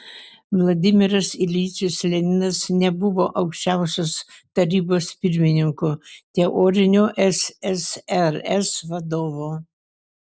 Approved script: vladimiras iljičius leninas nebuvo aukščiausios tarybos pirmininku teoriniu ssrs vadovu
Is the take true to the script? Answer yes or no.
yes